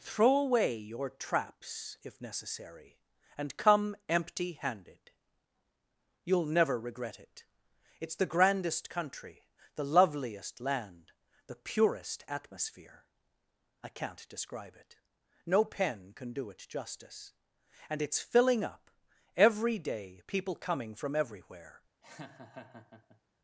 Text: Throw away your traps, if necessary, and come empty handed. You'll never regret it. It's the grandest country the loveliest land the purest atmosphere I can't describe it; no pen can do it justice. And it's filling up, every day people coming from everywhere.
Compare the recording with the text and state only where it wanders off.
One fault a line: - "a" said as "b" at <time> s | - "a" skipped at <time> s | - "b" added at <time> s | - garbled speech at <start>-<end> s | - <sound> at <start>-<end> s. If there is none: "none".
- laugh at 22.0-23.2 s